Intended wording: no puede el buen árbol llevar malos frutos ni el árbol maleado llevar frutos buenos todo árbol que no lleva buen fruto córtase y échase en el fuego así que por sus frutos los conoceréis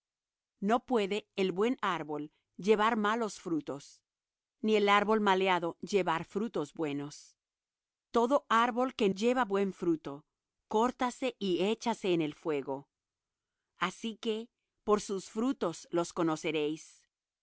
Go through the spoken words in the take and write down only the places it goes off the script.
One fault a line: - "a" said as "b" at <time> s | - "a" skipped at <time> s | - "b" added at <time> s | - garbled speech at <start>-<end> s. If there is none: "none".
- "no" skipped at 9.1 s